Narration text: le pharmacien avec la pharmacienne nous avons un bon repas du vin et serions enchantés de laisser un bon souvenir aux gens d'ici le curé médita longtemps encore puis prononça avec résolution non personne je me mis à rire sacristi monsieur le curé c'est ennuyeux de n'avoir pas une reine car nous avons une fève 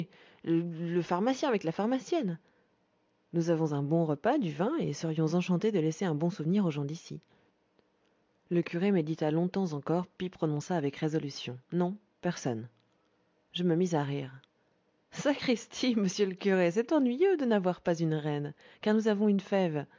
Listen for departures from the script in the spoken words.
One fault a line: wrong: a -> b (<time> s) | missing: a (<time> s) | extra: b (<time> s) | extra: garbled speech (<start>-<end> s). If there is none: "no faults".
no faults